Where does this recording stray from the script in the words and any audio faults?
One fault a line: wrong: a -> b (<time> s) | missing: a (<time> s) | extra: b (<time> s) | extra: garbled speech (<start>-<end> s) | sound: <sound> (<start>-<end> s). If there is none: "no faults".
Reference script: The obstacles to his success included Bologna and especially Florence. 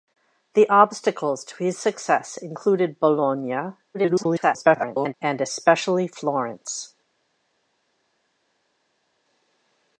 extra: garbled speech (3.9-5.1 s)